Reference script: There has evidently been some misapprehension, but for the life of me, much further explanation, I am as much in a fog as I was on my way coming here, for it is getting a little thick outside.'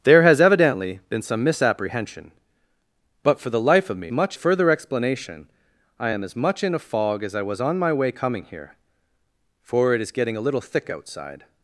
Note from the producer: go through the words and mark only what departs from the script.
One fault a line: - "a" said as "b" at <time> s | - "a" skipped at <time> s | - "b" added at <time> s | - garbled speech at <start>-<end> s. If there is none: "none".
none